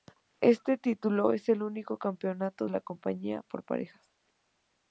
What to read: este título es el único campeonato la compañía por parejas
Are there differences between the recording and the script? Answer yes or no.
no